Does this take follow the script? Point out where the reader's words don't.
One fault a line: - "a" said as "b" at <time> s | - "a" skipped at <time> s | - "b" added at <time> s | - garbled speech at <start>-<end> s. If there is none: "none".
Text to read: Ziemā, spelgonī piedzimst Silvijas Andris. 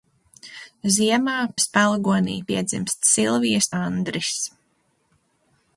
none